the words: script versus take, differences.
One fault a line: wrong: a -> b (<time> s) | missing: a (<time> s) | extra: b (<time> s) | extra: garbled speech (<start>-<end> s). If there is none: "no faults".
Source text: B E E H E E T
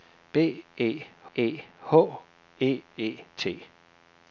no faults